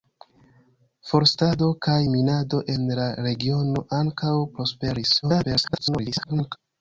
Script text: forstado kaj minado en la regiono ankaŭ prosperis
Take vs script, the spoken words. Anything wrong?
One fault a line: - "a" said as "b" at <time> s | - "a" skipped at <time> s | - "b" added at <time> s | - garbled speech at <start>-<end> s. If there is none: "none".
- garbled speech at 5.2-6.6 s